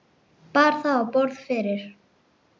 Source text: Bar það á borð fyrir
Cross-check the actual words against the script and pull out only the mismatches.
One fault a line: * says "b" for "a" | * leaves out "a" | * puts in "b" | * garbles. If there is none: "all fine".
all fine